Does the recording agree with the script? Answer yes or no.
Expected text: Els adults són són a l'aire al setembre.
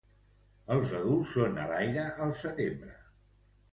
no